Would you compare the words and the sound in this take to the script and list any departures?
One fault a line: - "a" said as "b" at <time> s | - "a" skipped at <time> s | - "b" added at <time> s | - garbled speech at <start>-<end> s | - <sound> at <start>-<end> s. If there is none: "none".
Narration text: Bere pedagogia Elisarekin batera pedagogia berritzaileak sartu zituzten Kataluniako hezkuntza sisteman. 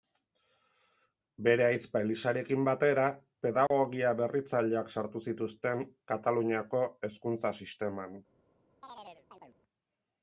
- "pedagogia" said as "ahizpa" at 1.6 s
- dropout at 3.7-3.7 s
- chirp at 8.8-9.6 s